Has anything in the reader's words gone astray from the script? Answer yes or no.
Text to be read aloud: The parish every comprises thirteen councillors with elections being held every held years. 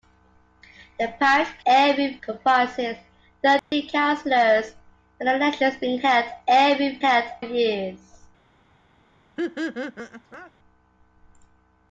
no